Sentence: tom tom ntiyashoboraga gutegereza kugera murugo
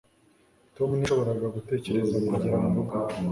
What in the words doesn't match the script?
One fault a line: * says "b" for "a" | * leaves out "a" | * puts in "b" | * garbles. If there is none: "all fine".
* leaves out "tom"